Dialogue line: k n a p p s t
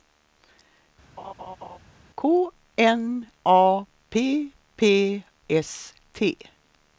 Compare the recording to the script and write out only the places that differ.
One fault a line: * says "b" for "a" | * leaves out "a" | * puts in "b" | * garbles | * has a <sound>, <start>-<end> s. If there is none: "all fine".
* has a laugh, 1.2-1.8 s